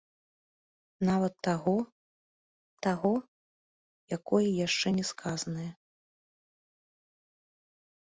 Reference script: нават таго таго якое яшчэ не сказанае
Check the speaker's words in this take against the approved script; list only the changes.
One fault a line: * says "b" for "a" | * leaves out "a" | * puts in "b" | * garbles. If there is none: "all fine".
all fine